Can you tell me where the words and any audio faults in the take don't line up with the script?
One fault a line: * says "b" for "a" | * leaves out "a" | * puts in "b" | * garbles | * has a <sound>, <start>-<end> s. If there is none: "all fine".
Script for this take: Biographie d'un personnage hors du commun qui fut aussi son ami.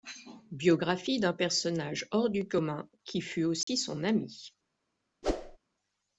* has a dropout, 3.6-3.7 s
* has a whoosh, 5.2-5.6 s